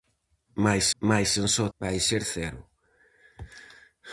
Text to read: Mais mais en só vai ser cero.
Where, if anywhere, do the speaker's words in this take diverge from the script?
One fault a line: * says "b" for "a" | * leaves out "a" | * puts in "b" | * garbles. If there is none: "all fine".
all fine